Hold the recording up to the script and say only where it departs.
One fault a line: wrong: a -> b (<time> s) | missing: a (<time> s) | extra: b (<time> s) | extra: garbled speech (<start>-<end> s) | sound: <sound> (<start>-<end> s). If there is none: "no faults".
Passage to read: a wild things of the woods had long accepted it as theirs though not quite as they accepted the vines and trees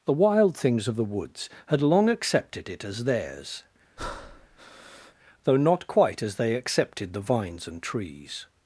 wrong: a -> the (0.1 s)
sound: breath (4.0-5.1 s)